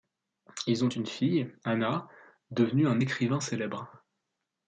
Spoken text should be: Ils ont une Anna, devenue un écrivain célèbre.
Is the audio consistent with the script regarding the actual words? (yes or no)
no